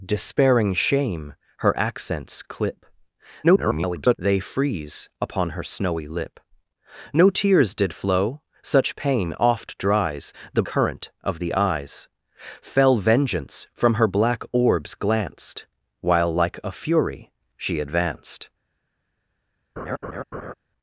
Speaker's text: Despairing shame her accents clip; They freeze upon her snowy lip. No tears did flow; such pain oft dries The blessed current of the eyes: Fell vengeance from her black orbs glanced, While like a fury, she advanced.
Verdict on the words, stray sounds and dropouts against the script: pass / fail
fail